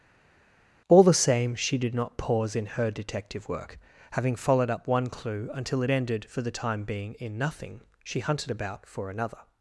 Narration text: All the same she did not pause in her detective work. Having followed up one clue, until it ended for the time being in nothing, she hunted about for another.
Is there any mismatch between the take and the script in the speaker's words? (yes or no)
no